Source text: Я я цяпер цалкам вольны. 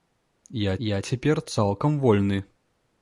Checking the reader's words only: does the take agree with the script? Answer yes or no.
yes